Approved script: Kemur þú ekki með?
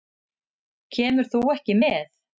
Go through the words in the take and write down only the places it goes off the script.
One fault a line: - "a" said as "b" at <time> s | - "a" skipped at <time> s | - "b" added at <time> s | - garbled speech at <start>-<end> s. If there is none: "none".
none